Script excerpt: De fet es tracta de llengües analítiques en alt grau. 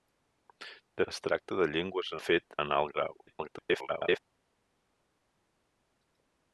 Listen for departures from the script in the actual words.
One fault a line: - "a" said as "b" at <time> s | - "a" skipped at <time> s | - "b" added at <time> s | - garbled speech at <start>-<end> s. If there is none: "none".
- "fet" skipped at 1.1 s
- "analítiques" said as "fet" at 2.2 s
- garbled speech at 3.3-4.2 s